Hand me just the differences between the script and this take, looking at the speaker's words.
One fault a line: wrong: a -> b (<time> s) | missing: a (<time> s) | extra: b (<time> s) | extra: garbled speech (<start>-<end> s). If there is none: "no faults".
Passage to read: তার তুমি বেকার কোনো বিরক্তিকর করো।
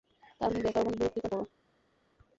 no faults